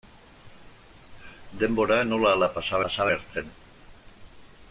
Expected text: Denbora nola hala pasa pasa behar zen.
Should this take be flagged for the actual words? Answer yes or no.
no